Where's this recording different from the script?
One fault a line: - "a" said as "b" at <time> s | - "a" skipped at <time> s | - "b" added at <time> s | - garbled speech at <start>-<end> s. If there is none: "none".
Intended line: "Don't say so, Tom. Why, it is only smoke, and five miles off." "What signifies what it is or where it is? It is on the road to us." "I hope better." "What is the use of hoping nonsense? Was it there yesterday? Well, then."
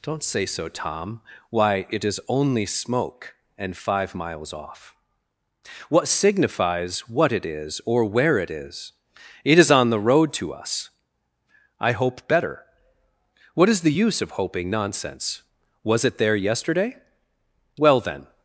none